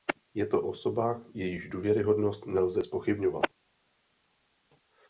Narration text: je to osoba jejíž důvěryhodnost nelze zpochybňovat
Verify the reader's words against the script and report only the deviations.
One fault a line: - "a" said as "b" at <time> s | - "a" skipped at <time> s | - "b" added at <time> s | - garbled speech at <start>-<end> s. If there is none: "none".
none